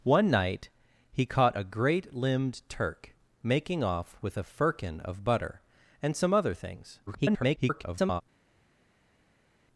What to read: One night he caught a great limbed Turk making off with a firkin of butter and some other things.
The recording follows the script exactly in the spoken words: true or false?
false